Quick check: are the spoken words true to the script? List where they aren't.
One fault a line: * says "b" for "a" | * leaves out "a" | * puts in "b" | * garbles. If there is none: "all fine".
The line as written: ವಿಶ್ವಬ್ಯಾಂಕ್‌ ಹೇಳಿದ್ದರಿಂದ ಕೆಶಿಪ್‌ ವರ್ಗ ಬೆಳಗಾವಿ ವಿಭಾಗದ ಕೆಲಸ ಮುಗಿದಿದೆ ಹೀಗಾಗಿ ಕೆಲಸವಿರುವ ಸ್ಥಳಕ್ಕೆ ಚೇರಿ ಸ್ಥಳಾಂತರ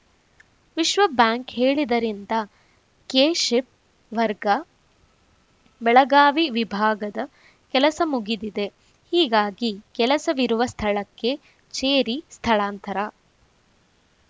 all fine